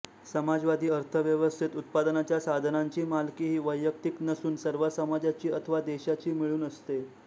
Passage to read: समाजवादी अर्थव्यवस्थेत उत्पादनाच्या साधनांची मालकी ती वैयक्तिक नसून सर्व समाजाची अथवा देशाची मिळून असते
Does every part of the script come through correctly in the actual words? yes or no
no